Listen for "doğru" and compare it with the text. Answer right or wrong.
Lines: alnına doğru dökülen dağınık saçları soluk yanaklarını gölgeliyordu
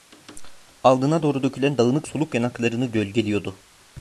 right